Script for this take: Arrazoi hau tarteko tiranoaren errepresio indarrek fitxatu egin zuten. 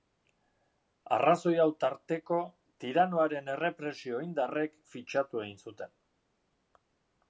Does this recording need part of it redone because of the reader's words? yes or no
no